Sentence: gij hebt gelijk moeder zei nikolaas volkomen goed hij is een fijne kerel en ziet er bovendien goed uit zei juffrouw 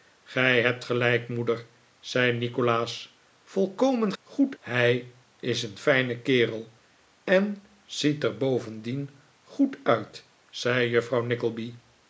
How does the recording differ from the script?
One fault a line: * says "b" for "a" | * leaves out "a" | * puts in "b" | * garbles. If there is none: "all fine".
all fine